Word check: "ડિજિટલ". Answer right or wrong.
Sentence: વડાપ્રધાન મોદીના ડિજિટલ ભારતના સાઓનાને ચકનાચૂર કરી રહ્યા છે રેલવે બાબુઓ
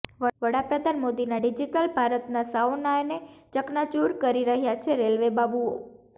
right